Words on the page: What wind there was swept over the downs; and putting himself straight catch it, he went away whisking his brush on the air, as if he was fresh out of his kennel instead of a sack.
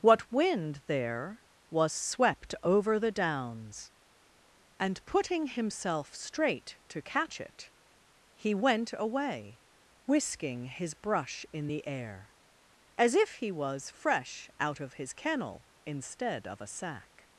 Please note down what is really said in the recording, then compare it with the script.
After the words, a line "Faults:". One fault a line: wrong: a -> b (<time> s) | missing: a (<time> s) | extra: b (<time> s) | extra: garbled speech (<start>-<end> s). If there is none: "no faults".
What wind there was swept over the downs; and putting himself straight to catch it, he went away whisking his brush in the air, as if he was fresh out of his kennel instead of a sack.
Faults:
extra: to (6.9 s)
wrong: on -> in (11.5 s)